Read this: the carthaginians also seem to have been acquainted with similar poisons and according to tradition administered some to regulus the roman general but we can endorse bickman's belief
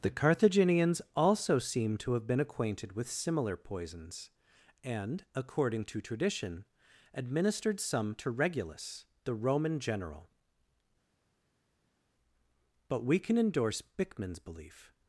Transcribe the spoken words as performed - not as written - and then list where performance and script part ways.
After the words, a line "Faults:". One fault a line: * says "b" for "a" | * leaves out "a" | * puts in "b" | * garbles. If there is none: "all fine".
the carthaginians also seem to have been acquainted with similar poisons and according to tradition administered some to regulus the roman general but we can endorse bickman's belief
Faults:
all fine